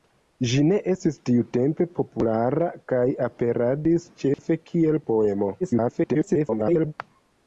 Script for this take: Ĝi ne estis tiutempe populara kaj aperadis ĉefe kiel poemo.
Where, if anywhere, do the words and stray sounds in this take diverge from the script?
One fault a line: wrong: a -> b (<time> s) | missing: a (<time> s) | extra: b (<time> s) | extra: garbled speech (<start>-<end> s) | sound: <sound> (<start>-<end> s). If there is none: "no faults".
sound: dropout (4.3-4.4 s)
extra: garbled speech (5.6-6.9 s)